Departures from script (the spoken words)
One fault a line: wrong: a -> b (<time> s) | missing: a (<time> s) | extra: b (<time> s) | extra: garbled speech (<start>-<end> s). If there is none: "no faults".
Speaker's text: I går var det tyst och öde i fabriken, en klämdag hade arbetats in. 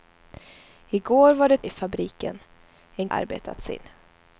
missing: tyst och öde (1.6 s)
missing: klämdag hade (3.1 s)